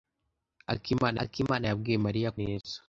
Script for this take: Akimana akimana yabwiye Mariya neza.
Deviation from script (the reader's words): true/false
false